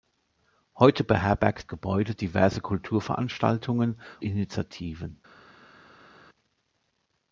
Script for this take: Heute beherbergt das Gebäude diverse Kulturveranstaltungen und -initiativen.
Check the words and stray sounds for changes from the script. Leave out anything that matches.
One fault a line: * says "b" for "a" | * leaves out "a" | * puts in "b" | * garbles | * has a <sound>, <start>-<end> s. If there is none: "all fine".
* leaves out "das"
* leaves out "und"